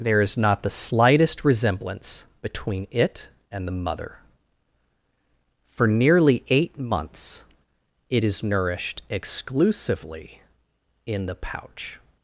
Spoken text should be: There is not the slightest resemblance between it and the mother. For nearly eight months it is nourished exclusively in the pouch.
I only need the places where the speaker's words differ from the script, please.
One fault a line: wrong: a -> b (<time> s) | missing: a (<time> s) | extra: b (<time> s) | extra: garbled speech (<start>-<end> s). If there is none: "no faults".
no faults